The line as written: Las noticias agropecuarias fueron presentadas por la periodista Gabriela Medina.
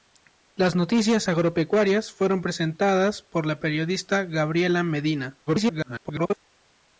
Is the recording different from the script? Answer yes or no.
yes